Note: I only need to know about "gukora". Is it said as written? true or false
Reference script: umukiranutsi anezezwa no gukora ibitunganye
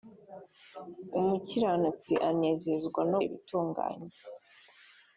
false